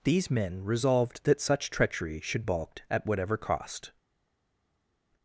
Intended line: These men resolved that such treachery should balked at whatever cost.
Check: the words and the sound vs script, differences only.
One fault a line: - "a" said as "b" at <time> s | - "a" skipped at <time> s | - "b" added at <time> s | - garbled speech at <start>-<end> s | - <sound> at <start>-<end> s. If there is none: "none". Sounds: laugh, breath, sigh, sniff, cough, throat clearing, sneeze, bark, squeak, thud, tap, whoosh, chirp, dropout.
none